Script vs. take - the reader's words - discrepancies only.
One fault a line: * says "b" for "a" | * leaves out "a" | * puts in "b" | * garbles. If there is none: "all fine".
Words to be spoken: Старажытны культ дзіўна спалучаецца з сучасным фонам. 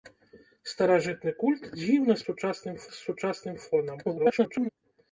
* says "сучасным" for "спалучаецца"
* garbles